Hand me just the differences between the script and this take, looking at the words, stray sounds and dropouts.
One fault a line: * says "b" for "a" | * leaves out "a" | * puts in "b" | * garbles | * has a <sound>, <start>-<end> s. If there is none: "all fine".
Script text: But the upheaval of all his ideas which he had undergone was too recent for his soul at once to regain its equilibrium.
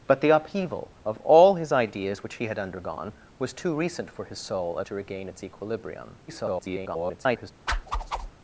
* leaves out "once"
* garbles
* has a whoosh, 7.7-8.3 s